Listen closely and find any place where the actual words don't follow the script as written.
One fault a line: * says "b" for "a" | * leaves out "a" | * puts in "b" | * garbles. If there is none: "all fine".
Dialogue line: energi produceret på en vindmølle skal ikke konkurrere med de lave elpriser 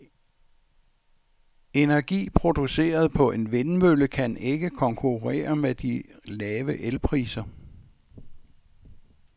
* says "kan" for "skal"